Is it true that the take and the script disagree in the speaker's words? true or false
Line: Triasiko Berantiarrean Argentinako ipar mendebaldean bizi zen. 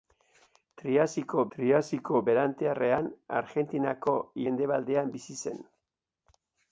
true